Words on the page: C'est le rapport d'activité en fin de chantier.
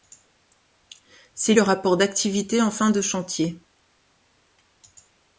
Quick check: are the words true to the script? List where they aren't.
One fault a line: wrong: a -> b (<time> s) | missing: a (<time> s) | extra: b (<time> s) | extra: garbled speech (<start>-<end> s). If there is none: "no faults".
no faults